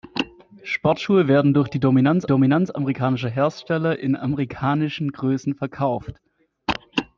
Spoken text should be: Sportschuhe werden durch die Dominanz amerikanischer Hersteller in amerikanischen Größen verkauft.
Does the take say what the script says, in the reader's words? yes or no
no